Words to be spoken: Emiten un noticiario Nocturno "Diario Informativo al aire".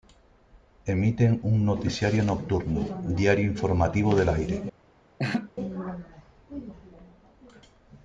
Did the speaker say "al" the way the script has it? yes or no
no